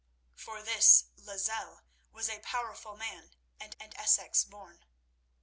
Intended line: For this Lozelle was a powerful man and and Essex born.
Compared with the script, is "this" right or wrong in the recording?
right